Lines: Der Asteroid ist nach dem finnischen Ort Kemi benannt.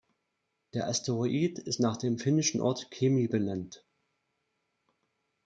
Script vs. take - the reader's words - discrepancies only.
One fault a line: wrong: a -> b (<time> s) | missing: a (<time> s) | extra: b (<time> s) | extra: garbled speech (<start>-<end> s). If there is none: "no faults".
no faults